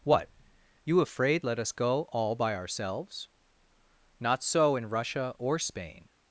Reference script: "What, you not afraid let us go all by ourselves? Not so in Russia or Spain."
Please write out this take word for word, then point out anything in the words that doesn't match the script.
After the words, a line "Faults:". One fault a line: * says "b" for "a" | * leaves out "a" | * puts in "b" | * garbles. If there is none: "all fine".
"What, you afraid let us go all by ourselves? Not so in Russia or Spain."
Faults:
* leaves out "not"